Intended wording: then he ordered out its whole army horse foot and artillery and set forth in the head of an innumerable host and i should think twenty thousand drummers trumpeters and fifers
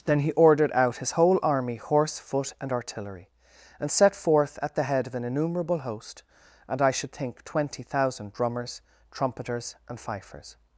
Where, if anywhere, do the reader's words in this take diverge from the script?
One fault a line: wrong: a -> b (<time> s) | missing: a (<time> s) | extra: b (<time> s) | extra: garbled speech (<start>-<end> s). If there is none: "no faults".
wrong: its -> his (1.0 s)
wrong: in -> at (4.6 s)